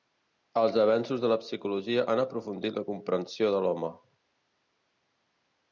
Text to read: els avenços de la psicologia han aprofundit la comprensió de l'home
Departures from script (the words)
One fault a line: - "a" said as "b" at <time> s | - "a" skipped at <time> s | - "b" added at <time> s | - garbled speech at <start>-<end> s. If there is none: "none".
none